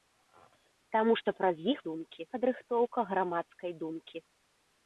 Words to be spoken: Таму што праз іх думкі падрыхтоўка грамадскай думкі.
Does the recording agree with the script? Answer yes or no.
yes